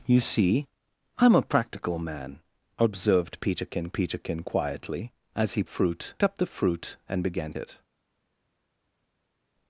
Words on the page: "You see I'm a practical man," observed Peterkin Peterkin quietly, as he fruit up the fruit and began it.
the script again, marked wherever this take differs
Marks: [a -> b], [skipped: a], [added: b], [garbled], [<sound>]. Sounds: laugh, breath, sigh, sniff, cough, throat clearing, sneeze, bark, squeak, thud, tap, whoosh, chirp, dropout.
"You see I'm a practical man," observed Peterkin Peterkin quietly, as he fruit up the fruit and began it.